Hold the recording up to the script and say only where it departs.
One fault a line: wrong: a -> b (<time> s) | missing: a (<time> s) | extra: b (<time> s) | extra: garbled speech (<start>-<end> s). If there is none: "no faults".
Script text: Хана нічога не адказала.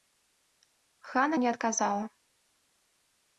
missing: нічога (1.4 s)